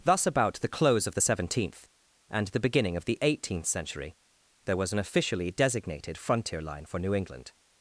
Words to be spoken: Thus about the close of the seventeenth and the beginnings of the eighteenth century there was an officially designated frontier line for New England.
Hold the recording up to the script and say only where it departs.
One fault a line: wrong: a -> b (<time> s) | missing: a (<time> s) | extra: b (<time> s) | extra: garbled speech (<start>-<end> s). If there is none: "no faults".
wrong: beginnings -> beginning (2.6 s)